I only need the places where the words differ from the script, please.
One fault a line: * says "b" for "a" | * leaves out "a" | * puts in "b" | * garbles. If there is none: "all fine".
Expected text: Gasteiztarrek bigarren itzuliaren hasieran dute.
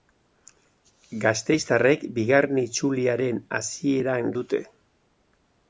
all fine